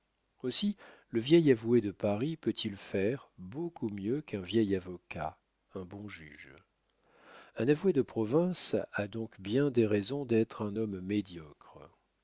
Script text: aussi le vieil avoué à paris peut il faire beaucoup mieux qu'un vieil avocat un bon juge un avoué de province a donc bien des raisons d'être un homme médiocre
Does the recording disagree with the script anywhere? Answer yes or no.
yes